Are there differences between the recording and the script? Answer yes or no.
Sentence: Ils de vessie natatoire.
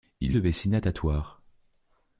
no